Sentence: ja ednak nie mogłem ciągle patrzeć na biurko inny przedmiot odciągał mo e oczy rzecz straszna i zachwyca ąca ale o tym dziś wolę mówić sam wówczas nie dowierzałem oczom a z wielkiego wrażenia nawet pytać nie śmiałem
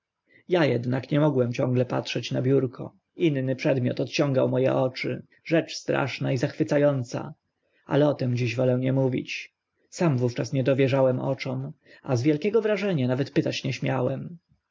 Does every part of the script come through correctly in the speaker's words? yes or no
no